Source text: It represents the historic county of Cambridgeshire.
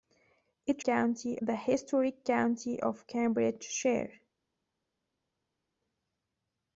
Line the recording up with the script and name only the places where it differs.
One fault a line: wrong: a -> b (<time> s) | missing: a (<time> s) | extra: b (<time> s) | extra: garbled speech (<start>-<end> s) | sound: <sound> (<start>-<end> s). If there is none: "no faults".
wrong: represents -> county (0.8 s)